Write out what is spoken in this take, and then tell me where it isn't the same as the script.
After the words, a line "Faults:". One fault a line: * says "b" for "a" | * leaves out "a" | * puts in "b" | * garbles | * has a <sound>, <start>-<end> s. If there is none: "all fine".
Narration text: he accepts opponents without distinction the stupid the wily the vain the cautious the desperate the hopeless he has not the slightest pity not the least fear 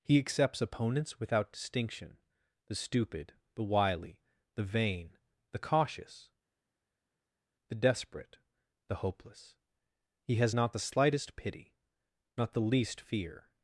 he accepts opponents without distinction the stupid the wily the vain the cautious the desperate the hopeless he has not the slightest pity not the least fear
Faults:
all fine